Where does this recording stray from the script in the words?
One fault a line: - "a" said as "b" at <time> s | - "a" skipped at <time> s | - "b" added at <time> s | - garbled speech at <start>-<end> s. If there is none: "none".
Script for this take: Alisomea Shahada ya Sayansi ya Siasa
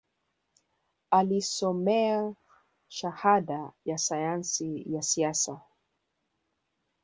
none